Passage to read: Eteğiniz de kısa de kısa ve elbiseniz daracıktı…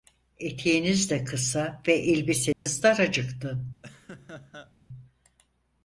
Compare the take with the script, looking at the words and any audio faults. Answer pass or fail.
fail